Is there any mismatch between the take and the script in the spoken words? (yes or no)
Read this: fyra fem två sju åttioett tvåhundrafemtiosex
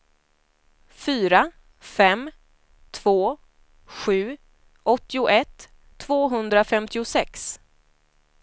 no